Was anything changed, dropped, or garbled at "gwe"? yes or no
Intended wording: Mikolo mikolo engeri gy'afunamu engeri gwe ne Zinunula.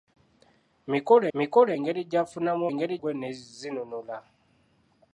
no